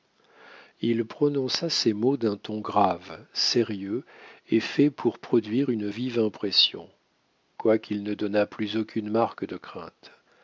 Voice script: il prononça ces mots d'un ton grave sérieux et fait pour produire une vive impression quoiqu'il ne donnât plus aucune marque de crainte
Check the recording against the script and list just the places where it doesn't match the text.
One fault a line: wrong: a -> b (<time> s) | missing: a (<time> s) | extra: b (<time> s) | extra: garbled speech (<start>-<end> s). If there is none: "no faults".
no faults